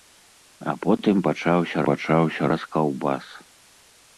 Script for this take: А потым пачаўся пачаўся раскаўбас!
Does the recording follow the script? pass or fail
pass